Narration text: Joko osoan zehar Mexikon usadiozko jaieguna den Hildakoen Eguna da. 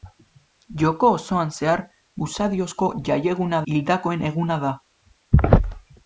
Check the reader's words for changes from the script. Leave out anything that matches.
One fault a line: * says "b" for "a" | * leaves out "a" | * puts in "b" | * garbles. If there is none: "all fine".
* leaves out "Mexikon"
* leaves out "den"